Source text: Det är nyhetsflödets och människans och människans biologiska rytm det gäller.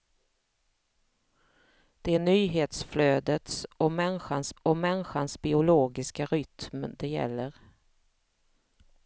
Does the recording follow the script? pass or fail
pass